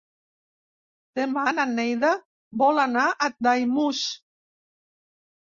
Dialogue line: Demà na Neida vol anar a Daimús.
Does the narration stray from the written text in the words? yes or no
no